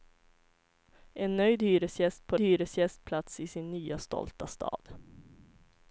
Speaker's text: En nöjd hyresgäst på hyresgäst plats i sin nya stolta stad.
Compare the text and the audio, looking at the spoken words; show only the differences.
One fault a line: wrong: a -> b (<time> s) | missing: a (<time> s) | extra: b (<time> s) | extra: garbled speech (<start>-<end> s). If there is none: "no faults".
no faults